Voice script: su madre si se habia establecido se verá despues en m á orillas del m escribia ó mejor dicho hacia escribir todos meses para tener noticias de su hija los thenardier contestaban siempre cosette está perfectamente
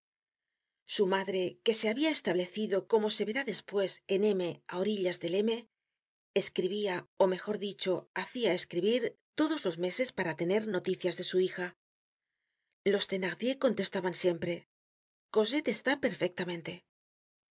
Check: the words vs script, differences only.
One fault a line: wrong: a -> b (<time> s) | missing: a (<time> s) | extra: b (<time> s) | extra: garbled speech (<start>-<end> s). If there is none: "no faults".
wrong: si -> que (1.6 s)
extra: como (2.9 s)
extra: los (9.7 s)